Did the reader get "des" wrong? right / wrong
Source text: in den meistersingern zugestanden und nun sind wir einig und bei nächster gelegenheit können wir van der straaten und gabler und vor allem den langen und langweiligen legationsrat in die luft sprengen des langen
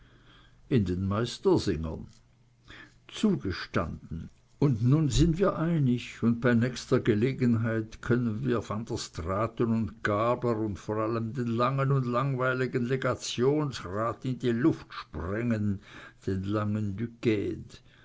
wrong